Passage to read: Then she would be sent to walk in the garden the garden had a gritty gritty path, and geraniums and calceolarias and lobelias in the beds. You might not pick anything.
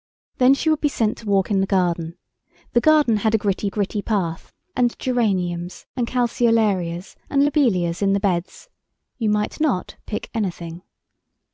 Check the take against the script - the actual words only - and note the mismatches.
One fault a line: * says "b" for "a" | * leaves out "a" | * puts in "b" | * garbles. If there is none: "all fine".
all fine